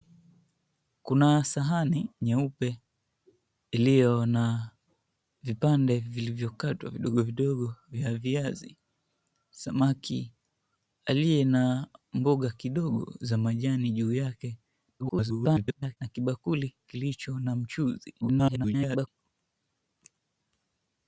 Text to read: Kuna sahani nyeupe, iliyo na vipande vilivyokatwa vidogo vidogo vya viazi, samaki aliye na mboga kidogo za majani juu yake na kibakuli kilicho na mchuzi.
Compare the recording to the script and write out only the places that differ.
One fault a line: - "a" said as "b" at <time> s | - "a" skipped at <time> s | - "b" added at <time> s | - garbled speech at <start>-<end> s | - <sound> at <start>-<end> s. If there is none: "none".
- garbled speech at 15.0-16.0 s
- garbled speech at 18.2-19.1 s